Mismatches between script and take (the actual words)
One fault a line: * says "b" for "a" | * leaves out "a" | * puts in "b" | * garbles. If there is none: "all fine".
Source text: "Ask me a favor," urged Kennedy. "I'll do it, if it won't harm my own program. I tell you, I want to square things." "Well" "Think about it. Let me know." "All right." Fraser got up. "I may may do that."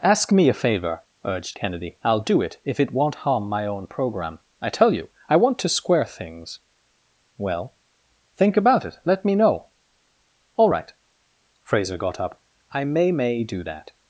all fine